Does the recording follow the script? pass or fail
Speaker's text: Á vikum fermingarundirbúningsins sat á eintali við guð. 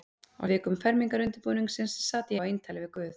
pass